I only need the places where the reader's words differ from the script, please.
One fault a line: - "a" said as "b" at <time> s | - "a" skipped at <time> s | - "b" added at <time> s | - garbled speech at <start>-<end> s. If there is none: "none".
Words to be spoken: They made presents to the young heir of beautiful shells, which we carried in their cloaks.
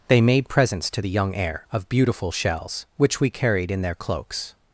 none